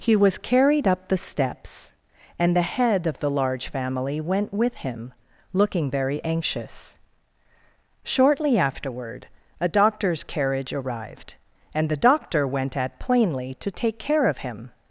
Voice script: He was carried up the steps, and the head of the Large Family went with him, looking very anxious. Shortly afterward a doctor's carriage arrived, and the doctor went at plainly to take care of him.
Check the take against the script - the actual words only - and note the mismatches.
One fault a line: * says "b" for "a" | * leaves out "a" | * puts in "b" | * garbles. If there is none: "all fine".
all fine